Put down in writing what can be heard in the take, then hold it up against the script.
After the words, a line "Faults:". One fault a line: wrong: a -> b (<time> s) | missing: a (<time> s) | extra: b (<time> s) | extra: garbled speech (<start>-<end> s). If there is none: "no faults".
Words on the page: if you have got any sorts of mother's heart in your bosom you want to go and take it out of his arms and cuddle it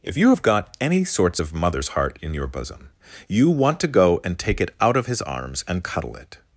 if you have got any sorts of mother's heart in your bosom you want to go and take it out of his arms and cuddle it
Faults:
no faults